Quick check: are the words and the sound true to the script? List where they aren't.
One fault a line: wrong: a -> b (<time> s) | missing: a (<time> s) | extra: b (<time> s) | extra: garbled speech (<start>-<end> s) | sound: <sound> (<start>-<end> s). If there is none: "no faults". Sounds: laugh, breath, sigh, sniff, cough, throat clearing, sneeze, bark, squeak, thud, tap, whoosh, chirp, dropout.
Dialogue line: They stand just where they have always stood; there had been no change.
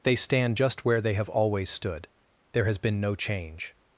wrong: had -> has (2.6 s)